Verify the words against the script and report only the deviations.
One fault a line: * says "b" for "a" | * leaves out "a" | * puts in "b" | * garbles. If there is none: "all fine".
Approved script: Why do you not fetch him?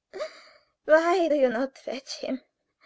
all fine